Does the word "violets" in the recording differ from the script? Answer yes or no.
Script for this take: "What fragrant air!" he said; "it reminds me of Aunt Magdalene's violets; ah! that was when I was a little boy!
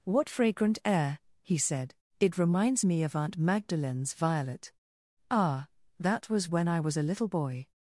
yes